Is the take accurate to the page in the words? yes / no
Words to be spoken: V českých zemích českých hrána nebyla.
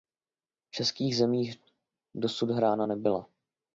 no